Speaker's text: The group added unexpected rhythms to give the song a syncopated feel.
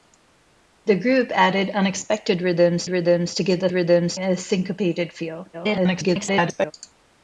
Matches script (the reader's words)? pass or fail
fail